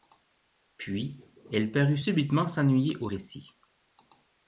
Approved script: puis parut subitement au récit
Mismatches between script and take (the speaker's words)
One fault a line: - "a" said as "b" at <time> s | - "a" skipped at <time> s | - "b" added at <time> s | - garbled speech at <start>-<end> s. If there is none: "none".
- "elle" added at 1.5 s
- "s'ennuyer" added at 2.5 s